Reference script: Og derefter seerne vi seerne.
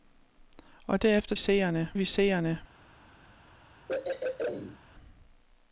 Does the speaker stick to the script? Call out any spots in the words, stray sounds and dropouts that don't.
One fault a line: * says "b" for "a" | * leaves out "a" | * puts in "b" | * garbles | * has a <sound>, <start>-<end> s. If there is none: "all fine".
* has a throat clearing, 3.9-4.8 s